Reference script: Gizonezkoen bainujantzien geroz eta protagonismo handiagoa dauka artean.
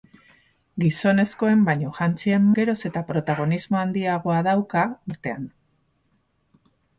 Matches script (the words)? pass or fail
pass